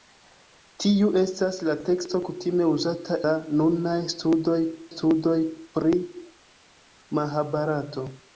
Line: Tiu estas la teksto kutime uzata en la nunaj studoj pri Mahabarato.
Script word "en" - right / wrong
wrong